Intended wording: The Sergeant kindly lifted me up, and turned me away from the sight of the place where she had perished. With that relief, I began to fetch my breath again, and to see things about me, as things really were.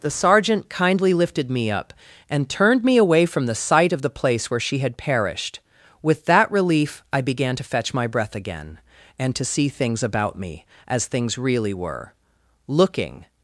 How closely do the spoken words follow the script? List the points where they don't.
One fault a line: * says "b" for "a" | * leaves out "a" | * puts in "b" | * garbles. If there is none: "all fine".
* puts in "Looking"